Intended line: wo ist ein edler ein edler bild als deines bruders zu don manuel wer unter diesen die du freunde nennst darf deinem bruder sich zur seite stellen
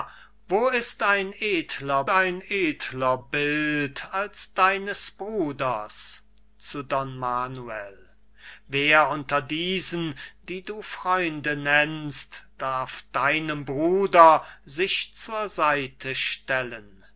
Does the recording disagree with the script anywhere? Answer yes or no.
no